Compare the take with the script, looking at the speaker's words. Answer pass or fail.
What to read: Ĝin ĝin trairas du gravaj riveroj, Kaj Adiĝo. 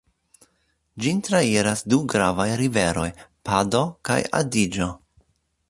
fail